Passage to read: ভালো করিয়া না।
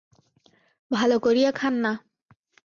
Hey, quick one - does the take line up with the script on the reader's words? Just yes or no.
no